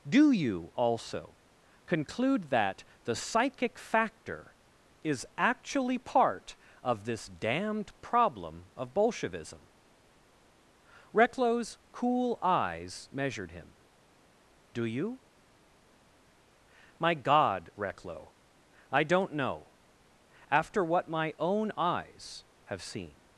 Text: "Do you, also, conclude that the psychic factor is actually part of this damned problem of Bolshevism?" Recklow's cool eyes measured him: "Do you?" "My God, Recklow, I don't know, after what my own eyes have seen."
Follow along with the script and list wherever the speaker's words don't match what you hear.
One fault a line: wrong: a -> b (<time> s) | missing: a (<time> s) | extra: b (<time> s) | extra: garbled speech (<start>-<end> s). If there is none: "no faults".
no faults